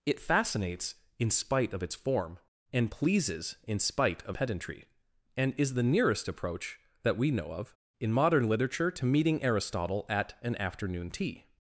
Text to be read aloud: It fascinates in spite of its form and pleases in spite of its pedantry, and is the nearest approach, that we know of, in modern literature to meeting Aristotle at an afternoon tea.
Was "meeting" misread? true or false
false